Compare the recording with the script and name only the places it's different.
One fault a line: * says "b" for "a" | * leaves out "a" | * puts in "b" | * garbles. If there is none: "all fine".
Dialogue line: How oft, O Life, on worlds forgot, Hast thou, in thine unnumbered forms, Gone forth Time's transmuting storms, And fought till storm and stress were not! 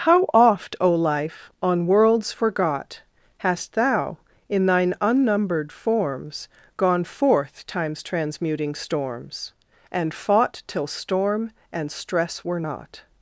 all fine